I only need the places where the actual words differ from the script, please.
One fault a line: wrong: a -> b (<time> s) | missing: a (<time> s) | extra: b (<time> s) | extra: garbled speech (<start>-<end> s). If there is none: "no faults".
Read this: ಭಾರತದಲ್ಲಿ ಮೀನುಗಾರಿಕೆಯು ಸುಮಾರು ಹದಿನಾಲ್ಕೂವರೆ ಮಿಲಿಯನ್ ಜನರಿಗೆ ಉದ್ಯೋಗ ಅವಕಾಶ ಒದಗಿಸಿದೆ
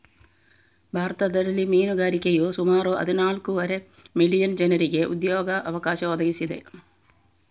no faults